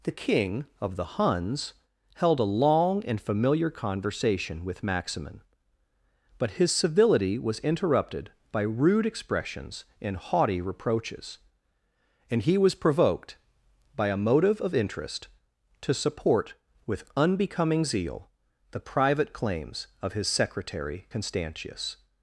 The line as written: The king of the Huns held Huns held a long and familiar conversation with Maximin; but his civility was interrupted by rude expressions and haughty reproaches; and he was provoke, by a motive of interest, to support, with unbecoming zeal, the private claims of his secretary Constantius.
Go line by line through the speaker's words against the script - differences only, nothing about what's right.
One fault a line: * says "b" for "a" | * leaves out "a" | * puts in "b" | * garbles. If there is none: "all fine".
* leaves out "Huns held"
* says "provoked" for "provoke"